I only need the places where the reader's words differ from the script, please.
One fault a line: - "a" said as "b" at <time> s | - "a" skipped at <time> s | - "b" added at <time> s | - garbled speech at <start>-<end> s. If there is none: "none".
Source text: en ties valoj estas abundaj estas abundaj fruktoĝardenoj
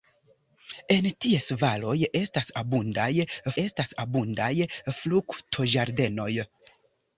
none